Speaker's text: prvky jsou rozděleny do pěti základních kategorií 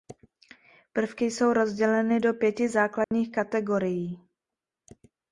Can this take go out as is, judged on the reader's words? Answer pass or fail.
pass